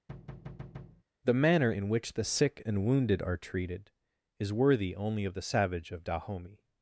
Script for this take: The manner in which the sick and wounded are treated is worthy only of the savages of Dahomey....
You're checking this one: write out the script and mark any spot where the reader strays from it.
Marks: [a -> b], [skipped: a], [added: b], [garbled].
The manner in which the sick and wounded are treated is worthy only of the [savages -> savage] of Dahomey....